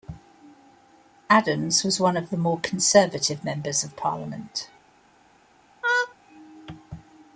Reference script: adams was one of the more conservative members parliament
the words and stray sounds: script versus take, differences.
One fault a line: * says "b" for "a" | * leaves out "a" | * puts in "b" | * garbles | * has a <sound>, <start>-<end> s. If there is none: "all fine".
* puts in "of"
* has a laugh, 5.8-6.1 s